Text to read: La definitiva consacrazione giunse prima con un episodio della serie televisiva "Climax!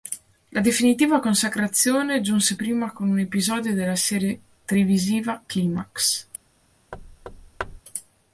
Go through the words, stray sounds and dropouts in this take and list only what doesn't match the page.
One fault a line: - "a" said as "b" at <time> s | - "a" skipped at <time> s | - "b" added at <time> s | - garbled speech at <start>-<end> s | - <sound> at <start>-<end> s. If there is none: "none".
- thud at 6.9-7.8 s